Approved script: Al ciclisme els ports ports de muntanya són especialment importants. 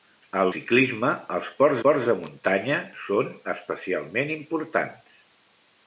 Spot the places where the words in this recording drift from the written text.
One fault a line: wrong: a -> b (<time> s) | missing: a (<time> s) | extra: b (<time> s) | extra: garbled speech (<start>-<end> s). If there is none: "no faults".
no faults